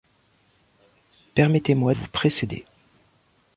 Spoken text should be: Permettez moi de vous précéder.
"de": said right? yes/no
no